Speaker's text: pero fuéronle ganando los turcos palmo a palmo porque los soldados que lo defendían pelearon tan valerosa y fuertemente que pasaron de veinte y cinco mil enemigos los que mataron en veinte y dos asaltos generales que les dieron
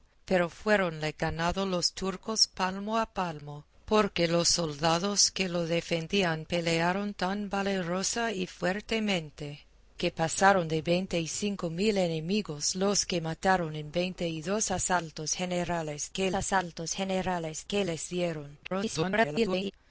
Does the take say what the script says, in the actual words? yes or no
no